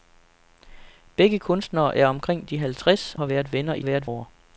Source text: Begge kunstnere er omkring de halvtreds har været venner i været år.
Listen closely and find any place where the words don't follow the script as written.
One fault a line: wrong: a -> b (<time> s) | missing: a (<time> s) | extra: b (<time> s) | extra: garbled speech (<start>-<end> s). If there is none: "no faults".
no faults